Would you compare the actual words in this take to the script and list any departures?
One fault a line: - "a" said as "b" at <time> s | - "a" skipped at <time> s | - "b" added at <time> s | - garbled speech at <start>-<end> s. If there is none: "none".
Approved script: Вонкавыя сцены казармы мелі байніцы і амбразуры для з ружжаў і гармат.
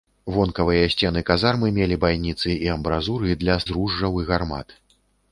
none